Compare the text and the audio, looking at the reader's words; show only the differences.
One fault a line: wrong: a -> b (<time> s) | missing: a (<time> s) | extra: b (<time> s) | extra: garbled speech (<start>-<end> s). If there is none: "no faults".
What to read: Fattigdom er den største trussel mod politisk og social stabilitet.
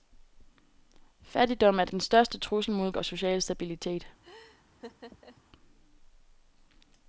missing: politisk (2.9 s)